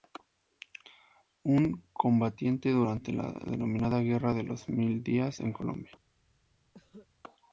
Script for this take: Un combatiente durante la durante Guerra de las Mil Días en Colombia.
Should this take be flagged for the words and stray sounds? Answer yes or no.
yes